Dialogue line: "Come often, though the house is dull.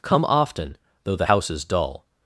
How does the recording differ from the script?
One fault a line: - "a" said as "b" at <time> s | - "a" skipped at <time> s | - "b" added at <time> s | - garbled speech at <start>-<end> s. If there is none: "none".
none